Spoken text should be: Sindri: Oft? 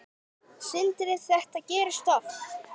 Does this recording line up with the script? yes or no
no